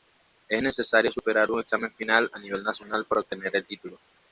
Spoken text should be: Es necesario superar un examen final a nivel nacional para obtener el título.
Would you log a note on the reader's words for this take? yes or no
no